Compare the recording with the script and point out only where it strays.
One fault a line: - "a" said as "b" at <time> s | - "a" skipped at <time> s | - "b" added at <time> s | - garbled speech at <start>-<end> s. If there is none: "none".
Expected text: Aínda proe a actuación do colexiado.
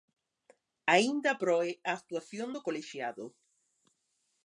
none